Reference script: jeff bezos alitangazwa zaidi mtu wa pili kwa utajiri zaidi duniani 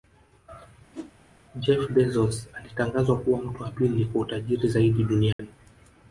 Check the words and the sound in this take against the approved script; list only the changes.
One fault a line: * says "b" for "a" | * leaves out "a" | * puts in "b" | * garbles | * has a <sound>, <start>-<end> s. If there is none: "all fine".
* has a whoosh, 0.9-1.1 s
* says "kuwa" for "zaidi"
* has a dropout, 5.3-5.4 s